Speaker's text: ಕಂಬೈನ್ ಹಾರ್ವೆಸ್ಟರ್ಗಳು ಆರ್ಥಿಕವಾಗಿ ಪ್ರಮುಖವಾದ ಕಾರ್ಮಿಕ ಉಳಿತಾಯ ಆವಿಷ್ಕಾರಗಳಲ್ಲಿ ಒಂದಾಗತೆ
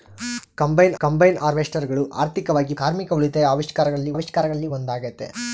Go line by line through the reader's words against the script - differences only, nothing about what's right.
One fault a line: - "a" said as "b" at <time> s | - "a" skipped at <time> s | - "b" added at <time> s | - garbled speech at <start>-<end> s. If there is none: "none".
- "ಕಂಬೈನ್" added at 1.0 s
- "ಪ್ರಮುಖವಾದ" skipped at 2.7 s
- "ಆವಿಷ್ಕಾರಗಳಲ್ಲಿ" added at 4.1 s